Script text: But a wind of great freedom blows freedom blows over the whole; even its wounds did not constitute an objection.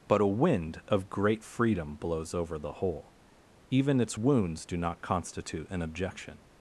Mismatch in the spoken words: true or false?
true